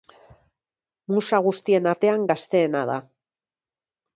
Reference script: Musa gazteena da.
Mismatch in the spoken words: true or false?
true